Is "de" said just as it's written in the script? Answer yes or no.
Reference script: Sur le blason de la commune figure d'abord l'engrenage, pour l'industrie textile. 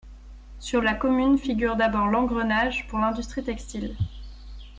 no